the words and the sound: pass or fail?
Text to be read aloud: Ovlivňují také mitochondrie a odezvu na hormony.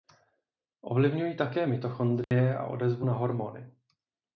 fail